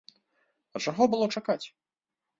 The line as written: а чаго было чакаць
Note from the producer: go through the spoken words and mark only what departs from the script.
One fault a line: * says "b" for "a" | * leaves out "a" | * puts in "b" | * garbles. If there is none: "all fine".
all fine